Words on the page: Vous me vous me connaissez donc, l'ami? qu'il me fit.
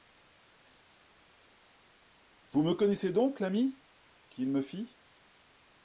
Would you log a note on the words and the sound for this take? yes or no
yes